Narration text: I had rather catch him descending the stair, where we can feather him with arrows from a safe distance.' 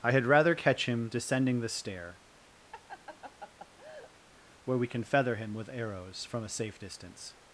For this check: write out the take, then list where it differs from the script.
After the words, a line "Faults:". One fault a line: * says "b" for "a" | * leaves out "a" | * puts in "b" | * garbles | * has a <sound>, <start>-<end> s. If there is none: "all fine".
I had rather catch him descending the stair, where we can feather him with arrows from a safe distance.'
Faults:
* has a laugh, 2.7-4.1 s